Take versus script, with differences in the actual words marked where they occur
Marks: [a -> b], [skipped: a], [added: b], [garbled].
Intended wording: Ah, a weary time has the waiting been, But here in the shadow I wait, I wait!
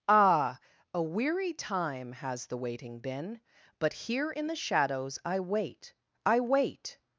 Ah, a weary time has the waiting been, But here in the [shadow -> shadows] I wait, I wait!